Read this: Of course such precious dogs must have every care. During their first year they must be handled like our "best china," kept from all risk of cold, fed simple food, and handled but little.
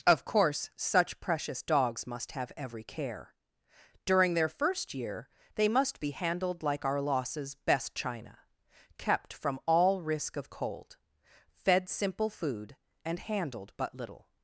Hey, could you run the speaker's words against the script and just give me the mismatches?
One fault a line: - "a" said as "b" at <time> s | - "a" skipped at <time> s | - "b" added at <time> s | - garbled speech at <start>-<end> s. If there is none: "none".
- "losses" added at 7.0 s